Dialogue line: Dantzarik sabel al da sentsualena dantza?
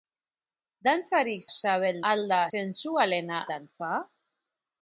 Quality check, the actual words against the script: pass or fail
pass